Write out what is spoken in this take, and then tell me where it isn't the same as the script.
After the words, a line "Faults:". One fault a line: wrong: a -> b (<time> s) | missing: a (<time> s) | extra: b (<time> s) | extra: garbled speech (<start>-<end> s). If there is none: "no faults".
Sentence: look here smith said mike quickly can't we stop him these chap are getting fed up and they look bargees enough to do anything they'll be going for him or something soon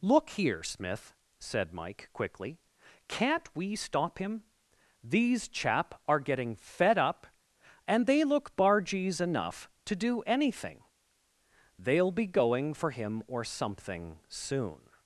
look here smith said mike quickly can't we stop him these chap are getting fed up and they look bargees enough to do anything they'll be going for him or something soon
Faults:
no faults